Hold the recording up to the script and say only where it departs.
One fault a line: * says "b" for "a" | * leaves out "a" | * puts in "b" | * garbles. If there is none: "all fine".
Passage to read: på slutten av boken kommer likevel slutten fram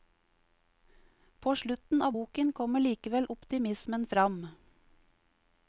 * says "optimismen" for "slutten"